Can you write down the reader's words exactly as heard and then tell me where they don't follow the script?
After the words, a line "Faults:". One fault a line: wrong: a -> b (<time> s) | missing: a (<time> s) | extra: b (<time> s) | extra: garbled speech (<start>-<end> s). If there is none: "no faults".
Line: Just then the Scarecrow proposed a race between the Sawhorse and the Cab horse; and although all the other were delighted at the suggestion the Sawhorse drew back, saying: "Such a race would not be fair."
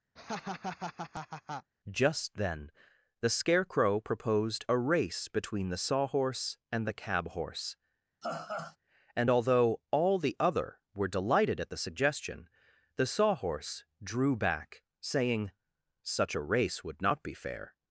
Just then the Scarecrow proposed a race between the Sawhorse and the Cab horse; and although all the other were delighted at the suggestion the Sawhorse drew back, saying: "Such a race would not be fair."
Faults:
no faults